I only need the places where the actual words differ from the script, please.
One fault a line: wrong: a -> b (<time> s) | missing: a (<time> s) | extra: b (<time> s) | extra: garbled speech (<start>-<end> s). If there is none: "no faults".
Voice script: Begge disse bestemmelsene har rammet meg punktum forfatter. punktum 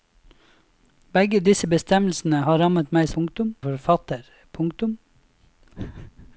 no faults